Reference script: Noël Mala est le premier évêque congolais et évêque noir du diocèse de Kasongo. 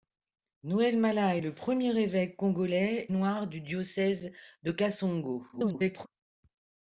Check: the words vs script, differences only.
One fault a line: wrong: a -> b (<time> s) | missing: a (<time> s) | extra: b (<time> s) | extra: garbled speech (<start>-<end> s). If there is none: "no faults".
missing: et évêque (3.1 s)
extra: garbled speech (5.5-6.1 s)